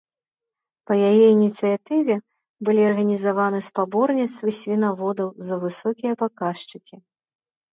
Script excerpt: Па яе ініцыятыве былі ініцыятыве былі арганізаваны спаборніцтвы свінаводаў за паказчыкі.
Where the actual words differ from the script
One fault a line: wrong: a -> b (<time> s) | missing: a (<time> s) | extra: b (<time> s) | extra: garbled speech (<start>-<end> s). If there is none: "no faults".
missing: ініцыятыве былі (2.8 s)
extra: высокія (5.7 s)